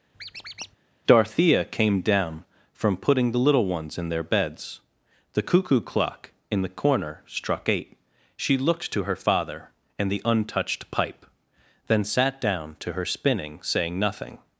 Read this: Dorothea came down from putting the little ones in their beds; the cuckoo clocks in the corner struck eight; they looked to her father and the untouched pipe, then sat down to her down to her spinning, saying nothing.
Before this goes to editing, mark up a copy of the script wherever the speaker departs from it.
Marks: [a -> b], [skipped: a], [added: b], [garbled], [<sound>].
[squeak] Dorothea came down from putting the little ones in their beds; the cuckoo [clocks -> clock] in the corner struck eight; [they -> she] looked to her father and the untouched pipe, then sat down to her [skipped: down to her] spinning, saying nothing.